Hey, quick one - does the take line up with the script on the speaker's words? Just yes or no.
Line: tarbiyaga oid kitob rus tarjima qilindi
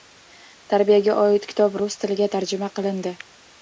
no